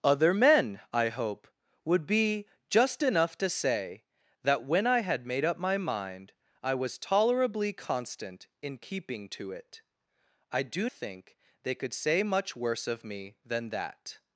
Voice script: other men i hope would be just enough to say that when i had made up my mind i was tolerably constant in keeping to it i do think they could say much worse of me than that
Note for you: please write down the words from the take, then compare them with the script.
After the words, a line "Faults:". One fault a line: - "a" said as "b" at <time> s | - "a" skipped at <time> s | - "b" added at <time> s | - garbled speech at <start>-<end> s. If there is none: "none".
other men i hope would be just enough to say that when i had made up my mind i was tolerably constant in keeping to it i do think they could say much worse of me than that
Faults:
none